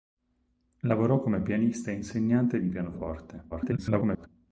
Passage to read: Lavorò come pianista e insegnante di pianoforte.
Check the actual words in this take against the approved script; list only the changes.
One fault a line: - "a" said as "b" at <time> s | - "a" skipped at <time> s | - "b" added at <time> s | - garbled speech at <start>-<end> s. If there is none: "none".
- garbled speech at 3.5-4.3 s